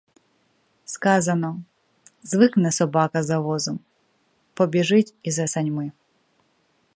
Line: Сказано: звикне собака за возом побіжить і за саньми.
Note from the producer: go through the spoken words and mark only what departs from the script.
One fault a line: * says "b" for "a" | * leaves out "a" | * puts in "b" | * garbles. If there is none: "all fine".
all fine